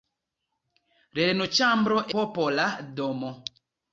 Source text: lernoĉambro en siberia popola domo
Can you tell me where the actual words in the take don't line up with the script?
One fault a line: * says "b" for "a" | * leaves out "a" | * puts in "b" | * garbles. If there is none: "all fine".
* leaves out "en siberia"